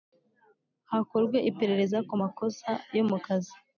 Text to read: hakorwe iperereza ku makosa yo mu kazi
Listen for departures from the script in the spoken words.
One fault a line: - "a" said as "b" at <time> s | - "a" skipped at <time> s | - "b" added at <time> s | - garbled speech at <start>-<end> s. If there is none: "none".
none